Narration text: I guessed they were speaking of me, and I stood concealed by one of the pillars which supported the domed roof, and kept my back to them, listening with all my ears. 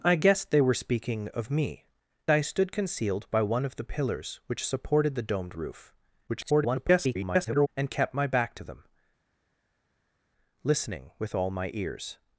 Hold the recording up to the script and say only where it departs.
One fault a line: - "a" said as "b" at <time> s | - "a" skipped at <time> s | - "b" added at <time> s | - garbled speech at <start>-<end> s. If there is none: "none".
- "and" skipped at 1.9 s
- garbled speech at 6.3-7.7 s